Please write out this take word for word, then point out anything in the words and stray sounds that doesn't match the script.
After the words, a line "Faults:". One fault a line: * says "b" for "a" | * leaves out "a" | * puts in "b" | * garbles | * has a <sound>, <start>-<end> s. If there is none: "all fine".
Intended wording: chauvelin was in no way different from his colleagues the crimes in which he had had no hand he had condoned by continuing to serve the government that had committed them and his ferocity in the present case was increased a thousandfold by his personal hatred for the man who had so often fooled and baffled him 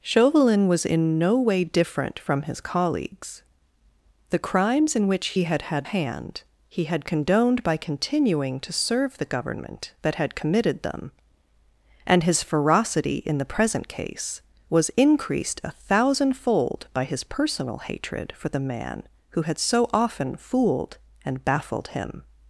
chauvelin was in no way different from his colleagues the crimes in which he had had hand he had condoned by continuing to serve the government that had committed them and his ferocity in the present case was increased a thousandfold by his personal hatred for the man who had so often fooled and baffled him
Faults:
* leaves out "no"